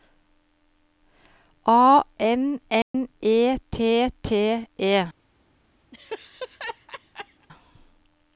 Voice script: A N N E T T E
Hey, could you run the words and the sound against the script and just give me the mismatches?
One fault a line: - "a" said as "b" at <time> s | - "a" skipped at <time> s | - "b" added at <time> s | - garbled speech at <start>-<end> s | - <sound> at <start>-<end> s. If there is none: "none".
- dropout at 2.8-2.9 s
- laugh at 5.9-7.5 s